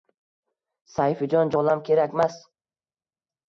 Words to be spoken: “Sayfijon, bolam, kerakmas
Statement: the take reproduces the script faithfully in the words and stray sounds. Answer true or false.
true